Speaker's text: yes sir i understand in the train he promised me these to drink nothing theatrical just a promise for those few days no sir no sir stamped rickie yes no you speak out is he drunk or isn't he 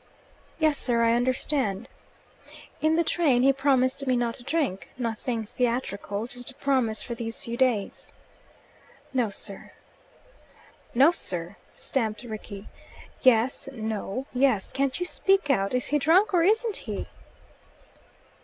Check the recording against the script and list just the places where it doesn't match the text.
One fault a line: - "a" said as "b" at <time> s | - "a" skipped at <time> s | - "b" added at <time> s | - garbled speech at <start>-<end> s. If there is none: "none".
- "these" said as "not" at 4.2 s
- "those" said as "these" at 7.2 s
- "yes can't" added at 14.3 s